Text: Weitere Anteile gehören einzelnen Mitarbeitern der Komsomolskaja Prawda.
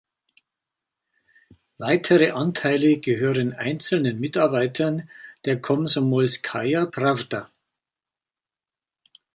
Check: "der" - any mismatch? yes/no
no